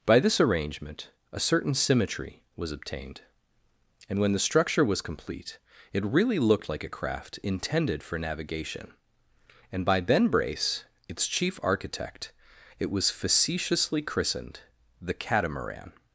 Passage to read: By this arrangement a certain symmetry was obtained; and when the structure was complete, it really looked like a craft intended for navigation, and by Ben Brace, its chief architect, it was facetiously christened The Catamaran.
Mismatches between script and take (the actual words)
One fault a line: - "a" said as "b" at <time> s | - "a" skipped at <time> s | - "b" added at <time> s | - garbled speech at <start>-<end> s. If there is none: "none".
none